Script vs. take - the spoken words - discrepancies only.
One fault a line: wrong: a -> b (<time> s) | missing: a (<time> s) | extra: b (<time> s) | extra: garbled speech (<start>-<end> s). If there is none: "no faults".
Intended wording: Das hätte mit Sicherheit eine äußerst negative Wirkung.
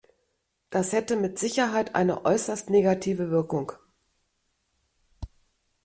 no faults